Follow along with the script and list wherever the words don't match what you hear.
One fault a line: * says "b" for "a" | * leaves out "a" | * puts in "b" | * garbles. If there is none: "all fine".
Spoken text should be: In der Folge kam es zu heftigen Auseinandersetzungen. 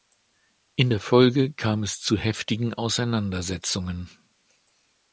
all fine